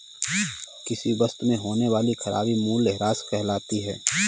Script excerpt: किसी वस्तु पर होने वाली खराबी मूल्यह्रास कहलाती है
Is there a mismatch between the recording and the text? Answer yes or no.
yes